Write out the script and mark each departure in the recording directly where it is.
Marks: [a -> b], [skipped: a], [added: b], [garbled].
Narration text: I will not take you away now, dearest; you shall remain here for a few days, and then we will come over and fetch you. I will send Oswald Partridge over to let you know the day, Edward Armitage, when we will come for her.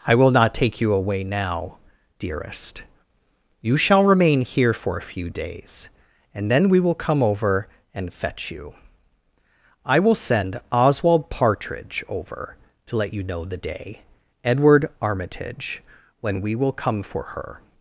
I will not take you away now, dearest; you shall remain here for a few days, and then we will come over and fetch you. I will send Oswald Partridge over to let you know the day, Edward Armitage, when we will come for her.